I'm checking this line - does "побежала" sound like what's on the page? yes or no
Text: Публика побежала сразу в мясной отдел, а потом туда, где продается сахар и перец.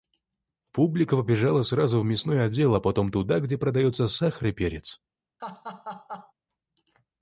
yes